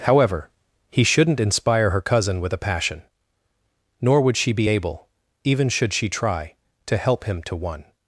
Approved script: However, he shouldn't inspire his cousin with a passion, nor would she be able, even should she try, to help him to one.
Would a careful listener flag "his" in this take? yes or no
yes